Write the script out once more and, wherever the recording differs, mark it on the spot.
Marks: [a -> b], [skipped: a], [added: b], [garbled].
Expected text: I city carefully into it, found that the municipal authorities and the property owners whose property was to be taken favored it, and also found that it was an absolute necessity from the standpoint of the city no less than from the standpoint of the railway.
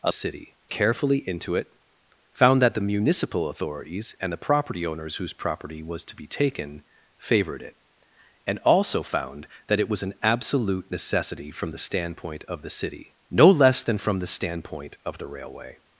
I city carefully into it, found that the municipal authorities and the property owners whose property was to be taken favored it, and also found that it was an absolute necessity from the standpoint of the city no less than from the standpoint of the railway.